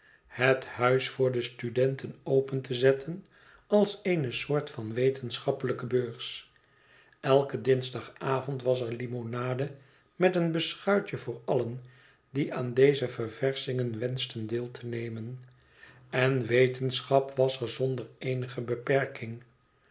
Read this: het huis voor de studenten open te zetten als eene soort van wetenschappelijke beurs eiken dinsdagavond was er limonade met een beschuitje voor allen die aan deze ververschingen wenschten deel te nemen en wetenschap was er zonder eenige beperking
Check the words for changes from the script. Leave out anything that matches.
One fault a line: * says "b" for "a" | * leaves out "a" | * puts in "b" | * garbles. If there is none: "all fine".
all fine